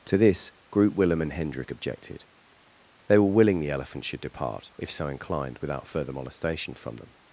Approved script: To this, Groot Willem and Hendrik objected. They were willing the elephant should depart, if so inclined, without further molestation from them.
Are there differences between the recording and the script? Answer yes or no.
no